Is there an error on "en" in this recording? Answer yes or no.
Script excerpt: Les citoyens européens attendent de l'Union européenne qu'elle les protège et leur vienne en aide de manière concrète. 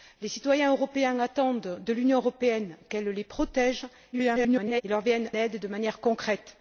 yes